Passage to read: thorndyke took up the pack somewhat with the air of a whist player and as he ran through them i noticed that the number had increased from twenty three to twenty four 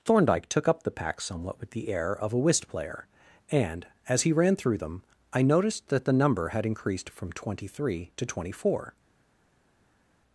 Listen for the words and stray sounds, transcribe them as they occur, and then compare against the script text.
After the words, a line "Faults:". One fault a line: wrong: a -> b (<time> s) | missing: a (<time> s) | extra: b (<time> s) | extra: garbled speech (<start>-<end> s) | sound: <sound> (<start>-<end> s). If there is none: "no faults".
thorndyke took up the pack somewhat with the air of a whist player and as he ran through them i noticed that the number had increased from twenty three to twenty four
Faults:
no faults